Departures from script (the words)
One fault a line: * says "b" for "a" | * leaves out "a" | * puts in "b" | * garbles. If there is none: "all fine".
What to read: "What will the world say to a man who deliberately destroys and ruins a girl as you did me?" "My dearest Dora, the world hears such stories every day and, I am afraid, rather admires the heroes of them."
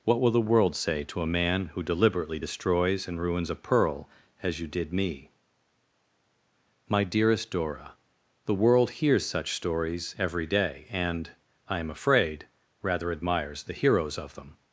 * says "pearl" for "girl"